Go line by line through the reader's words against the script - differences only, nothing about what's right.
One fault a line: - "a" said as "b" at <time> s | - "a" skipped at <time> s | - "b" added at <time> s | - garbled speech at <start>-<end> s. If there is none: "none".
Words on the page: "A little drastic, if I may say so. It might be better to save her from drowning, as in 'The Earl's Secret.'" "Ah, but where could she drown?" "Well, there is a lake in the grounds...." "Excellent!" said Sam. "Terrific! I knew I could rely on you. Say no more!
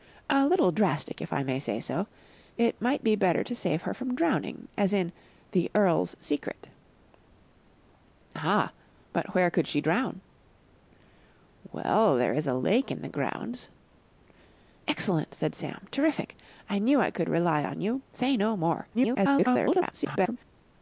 - garbled speech at 18.9-20.4 s